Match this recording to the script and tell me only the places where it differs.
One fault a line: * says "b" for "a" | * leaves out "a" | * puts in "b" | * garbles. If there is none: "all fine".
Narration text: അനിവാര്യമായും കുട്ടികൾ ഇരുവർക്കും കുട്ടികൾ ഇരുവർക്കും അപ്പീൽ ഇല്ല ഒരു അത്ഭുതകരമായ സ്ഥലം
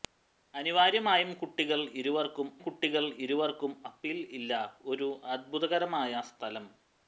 all fine